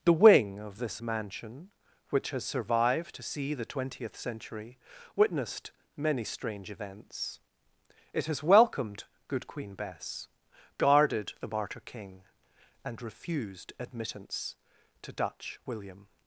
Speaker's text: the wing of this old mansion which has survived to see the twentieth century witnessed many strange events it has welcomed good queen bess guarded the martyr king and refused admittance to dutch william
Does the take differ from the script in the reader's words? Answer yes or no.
yes